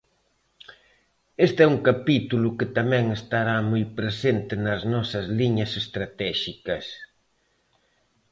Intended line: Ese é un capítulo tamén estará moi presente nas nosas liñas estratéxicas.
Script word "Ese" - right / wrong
wrong